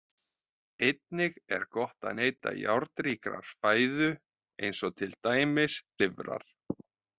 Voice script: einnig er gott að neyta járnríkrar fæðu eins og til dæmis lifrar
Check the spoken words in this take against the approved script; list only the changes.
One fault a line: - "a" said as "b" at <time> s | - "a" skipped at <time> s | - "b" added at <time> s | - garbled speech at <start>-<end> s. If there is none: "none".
none